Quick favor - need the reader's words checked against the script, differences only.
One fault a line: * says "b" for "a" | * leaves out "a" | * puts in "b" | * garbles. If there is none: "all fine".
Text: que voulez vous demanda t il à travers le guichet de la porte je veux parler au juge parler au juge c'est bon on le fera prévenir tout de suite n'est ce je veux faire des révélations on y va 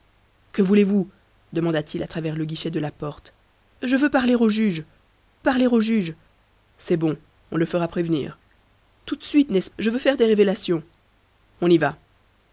all fine